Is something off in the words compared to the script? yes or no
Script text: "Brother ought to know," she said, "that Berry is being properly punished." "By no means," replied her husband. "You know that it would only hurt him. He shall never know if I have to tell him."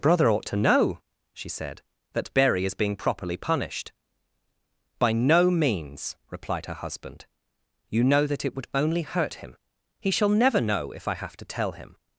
no